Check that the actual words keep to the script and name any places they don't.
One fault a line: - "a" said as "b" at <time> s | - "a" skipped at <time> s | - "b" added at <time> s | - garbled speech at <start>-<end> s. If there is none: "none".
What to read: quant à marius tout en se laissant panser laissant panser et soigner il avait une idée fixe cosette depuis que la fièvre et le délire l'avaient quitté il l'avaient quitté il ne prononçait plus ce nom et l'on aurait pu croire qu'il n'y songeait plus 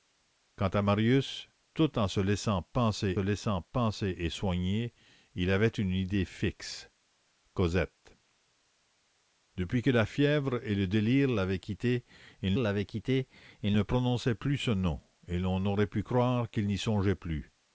none